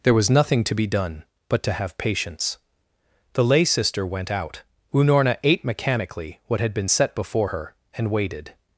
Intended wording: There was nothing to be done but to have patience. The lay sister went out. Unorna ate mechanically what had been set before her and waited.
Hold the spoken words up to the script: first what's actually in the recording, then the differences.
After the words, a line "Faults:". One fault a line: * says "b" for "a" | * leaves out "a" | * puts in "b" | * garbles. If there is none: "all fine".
There was nothing to be done but to have patience. The lay sister went out. Unorna ate mechanically what had been set before her and waited.
Faults:
all fine